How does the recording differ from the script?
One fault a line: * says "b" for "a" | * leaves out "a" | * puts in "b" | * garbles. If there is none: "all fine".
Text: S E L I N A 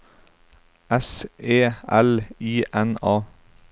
all fine